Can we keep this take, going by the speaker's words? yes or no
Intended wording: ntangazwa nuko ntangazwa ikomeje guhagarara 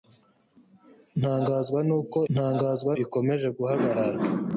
yes